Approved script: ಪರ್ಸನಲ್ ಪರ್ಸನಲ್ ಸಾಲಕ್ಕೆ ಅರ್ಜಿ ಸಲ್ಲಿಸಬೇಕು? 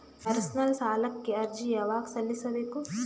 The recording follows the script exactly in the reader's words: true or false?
false